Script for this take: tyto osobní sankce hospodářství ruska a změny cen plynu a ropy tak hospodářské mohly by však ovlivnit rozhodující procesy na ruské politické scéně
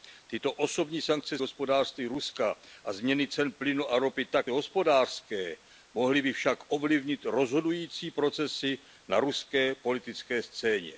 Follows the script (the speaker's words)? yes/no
yes